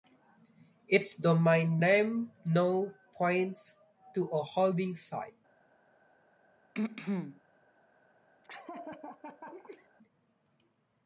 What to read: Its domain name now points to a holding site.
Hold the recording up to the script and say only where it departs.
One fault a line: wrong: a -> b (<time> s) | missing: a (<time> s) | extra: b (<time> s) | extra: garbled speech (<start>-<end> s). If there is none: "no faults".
no faults